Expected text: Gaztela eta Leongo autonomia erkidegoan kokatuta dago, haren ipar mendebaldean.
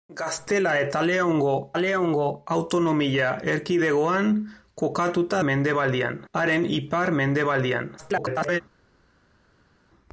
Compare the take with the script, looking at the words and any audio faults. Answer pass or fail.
fail